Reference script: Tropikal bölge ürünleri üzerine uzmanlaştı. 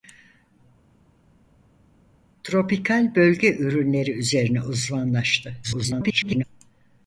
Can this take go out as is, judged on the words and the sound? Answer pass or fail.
fail